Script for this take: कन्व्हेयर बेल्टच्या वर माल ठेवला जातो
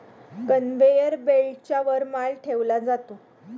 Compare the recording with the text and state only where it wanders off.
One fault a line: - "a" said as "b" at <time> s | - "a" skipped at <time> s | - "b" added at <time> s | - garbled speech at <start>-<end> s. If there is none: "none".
none